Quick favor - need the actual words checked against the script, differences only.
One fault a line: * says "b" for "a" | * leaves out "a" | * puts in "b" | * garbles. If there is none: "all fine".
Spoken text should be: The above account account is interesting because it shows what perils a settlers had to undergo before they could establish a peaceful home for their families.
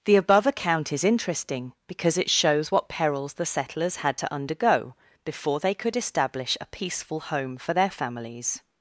* leaves out "account"
* says "the" for "a"